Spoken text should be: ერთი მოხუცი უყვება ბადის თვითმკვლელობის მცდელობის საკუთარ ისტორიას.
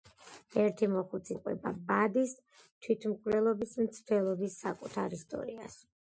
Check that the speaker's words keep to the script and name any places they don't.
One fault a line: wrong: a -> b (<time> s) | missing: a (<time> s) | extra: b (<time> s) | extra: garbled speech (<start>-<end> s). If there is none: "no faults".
no faults